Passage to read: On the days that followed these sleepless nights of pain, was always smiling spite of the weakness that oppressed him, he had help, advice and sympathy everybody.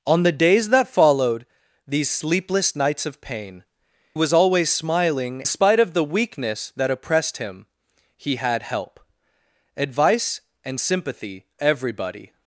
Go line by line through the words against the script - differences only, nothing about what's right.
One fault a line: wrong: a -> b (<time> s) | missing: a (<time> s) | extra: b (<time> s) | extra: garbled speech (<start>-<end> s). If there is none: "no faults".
no faults